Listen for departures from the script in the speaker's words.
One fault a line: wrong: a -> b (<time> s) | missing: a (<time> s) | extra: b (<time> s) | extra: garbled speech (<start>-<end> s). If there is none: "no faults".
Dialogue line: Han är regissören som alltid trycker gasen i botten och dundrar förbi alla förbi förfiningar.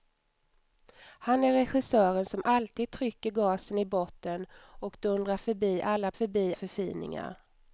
no faults